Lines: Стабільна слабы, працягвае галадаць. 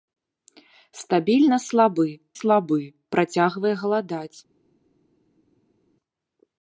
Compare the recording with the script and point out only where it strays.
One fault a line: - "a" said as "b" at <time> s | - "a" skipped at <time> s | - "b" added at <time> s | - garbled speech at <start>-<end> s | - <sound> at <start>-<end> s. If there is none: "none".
- "слабы" added at 2.4 s